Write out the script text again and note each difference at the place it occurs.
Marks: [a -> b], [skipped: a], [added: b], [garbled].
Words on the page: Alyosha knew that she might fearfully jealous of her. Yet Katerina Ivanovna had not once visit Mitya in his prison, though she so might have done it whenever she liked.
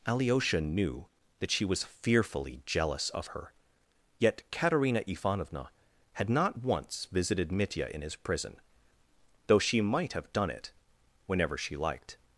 Alyosha knew that she [might -> was] fearfully jealous of her. Yet Katerina Ivanovna had not once [visit -> visited] Mitya in his prison, though she [skipped: so] might have done it whenever she liked.